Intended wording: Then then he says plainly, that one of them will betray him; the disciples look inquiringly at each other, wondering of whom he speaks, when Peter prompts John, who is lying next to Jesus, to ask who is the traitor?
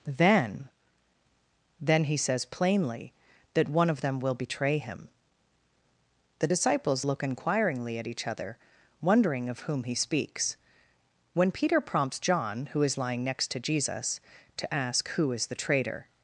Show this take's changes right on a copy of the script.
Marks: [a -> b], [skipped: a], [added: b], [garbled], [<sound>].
Then then he says plainly, that one of them will betray him; the disciples look inquiringly at each other, wondering of whom he speaks, when Peter prompts John, who is lying next to Jesus, to ask who is the traitor?